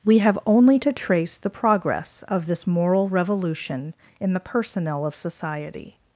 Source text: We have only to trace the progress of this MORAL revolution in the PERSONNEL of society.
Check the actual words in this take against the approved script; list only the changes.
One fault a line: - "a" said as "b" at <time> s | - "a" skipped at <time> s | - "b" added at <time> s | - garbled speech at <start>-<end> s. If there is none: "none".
none